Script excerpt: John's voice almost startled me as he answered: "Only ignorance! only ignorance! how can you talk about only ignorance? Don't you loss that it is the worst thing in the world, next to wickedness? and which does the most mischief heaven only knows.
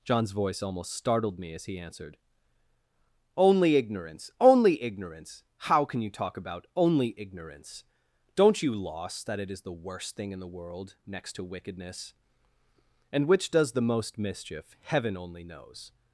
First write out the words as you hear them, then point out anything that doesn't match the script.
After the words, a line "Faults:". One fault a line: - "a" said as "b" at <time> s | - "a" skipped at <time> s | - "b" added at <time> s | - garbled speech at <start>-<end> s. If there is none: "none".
John's voice almost startled me as he answered: "Only ignorance! only ignorance! how can you talk about only ignorance? Don't you loss that it is the worst thing in the world, next to wickedness? and which does the most mischief heaven only knows.
Faults:
none